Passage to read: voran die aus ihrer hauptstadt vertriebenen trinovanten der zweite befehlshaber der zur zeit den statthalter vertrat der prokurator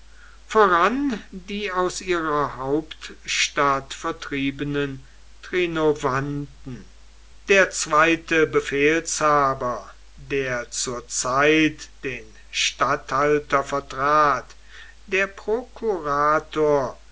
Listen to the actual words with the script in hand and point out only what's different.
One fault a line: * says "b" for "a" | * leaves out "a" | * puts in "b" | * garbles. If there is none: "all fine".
all fine